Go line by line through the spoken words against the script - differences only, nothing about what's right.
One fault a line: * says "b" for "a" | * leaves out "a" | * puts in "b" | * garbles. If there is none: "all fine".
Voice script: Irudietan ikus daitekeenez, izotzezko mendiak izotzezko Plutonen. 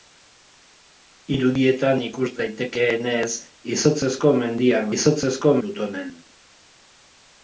all fine